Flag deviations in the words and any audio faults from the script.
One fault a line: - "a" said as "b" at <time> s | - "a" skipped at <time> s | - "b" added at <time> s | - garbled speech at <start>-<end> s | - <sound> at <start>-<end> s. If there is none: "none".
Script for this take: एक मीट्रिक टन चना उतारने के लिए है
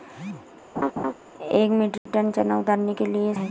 - laugh at 0.7-1.1 s
- dropout at 2.0-2.1 s